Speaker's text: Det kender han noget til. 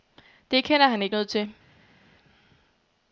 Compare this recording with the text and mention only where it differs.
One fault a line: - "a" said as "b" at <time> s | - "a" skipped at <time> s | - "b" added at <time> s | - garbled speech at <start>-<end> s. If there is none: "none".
- "ikke" added at 1.0 s